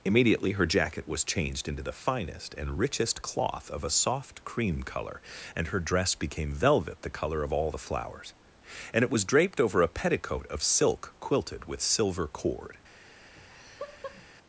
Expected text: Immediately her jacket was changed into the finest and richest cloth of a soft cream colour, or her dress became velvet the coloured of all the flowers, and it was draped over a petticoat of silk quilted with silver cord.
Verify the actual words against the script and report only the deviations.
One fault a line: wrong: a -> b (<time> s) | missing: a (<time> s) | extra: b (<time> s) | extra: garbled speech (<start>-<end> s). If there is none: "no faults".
wrong: or -> and (5.6 s)
wrong: coloured -> colour (7.1 s)